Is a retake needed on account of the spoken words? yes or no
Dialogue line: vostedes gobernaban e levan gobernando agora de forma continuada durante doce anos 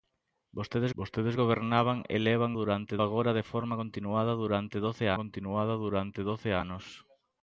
yes